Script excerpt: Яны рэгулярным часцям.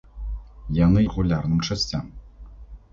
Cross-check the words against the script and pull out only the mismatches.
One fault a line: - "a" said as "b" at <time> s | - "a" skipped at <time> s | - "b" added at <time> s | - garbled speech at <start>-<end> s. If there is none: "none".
none